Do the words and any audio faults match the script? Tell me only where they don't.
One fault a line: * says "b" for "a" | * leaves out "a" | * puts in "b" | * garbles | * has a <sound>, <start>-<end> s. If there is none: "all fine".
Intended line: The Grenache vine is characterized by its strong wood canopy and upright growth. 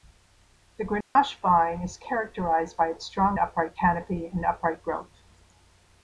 * has a dropout, 1.0-1.2 s
* says "upright" for "wood"